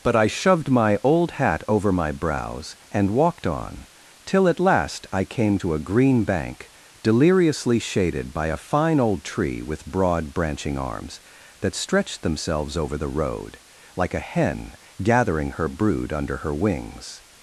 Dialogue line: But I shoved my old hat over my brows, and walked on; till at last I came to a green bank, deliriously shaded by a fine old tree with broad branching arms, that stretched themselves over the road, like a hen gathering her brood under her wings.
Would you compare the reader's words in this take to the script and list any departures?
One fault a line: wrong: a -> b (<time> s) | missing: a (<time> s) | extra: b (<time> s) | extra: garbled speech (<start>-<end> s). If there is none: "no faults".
no faults